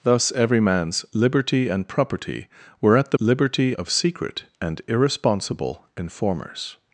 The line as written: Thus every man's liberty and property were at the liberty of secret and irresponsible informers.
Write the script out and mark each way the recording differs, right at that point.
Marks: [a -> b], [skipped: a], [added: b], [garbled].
Thus every man's liberty and property were at the liberty of secret and irresponsible informers.